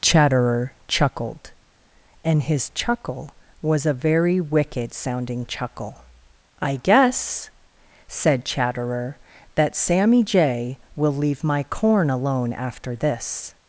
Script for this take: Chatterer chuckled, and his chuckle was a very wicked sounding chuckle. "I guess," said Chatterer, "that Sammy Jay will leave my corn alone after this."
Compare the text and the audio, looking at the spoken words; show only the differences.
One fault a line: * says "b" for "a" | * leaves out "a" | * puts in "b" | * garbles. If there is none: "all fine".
all fine